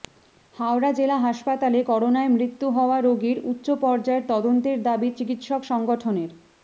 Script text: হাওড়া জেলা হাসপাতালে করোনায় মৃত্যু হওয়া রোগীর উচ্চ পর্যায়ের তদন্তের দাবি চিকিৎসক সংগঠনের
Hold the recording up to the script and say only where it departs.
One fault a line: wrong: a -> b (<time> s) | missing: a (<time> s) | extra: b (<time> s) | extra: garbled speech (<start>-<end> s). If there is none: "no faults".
no faults